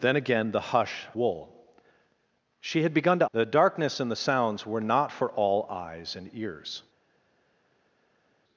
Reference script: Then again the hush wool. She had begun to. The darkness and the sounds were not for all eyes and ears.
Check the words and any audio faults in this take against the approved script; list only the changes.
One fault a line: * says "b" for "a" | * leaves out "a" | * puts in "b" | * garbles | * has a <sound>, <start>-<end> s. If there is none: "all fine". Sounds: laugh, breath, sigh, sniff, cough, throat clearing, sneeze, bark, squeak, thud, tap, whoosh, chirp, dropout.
all fine